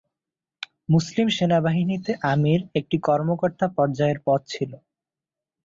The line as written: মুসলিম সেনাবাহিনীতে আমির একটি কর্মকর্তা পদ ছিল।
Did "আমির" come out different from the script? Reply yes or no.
no